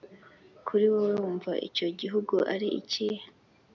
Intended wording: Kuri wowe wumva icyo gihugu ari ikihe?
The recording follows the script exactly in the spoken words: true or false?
true